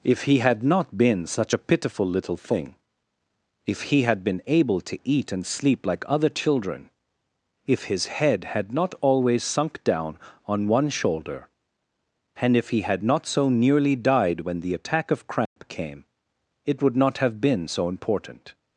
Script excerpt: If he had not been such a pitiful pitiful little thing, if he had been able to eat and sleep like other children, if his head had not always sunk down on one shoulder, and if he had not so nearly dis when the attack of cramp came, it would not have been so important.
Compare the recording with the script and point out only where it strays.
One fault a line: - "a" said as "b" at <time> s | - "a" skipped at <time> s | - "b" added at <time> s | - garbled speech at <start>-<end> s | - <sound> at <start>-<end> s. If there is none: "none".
- "pitiful" skipped at 2.1 s
- "dis" said as "died" at 14.0 s
- dropout at 15.5-15.6 s